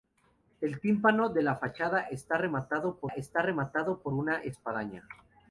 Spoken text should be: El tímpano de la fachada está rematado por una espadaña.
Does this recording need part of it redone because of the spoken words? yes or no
yes